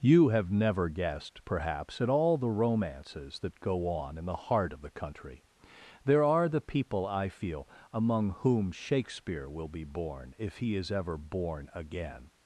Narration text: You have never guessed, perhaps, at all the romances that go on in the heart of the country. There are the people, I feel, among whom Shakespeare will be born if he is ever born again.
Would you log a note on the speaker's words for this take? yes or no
no